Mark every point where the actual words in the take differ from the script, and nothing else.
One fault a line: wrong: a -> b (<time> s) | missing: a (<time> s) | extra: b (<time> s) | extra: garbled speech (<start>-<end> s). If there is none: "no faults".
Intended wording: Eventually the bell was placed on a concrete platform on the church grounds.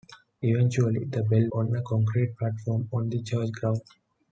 missing: was placed (1.5 s)